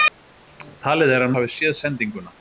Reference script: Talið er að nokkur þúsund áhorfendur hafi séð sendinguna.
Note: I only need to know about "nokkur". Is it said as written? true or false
false